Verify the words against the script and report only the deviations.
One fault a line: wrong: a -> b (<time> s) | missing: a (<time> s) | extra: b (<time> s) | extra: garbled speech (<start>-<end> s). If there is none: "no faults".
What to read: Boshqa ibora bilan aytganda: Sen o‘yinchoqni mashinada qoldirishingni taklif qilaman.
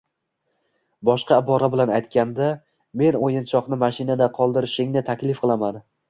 wrong: Sen -> Men (3.0 s)